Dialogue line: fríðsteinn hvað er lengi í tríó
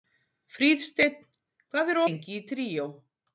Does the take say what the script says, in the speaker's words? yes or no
yes